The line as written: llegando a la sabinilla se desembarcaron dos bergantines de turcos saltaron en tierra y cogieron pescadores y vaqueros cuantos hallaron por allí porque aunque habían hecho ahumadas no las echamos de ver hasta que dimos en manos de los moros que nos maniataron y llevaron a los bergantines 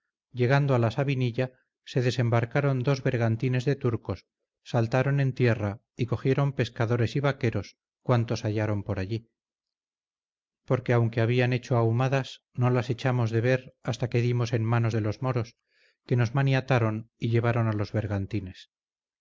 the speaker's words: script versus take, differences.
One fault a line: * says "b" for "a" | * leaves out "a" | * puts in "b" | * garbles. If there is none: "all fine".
all fine